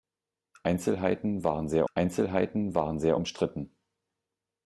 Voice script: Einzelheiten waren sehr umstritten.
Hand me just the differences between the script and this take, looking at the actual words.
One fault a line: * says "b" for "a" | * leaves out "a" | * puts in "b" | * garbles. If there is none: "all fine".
* puts in "einzelheiten waren sehr"